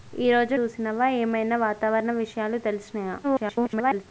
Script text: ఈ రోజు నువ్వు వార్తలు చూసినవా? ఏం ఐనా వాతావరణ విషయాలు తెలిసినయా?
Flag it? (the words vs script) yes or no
yes